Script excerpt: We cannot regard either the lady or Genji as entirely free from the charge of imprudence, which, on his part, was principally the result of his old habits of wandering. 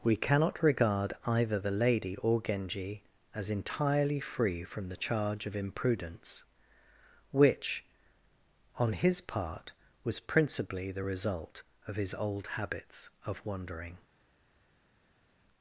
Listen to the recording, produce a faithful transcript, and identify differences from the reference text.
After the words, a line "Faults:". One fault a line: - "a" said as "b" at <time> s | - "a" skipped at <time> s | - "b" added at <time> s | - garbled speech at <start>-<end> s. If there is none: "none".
We cannot regard either the lady or Genji as entirely free from the charge of imprudence, which, on his part, was principally the result of his old habits of wandering.
Faults:
none